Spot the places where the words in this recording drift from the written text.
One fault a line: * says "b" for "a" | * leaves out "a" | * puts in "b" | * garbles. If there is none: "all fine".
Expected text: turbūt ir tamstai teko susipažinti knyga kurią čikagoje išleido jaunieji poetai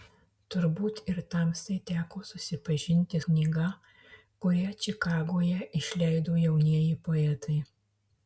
all fine